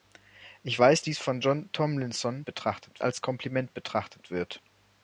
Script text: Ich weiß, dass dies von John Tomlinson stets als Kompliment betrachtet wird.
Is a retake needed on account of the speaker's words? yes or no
yes